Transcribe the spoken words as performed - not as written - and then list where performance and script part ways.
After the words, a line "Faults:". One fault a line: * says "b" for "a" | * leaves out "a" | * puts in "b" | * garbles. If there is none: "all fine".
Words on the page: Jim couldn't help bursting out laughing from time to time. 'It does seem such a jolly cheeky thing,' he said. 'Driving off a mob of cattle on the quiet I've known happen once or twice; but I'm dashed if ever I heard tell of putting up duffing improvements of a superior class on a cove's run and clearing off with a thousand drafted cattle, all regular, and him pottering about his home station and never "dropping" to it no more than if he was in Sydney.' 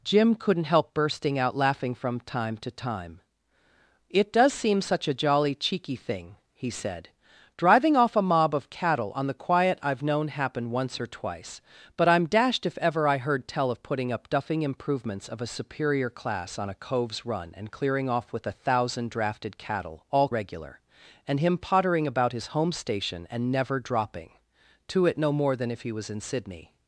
Jim couldn't help bursting out laughing from time to time. 'It does seem such a jolly cheeky thing,' he said. 'Driving off a mob of cattle on the quiet I've known happen once or twice; but I'm dashed if ever I heard tell of putting up duffing improvements of a superior class on a cove's run and clearing off with a thousand drafted cattle, all regular, and him pottering about his home station and never "dropping" to it no more than if he was in Sydney.'
Faults:
all fine